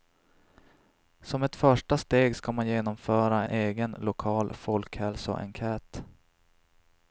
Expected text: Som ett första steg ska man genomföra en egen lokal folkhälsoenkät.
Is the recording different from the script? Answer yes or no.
yes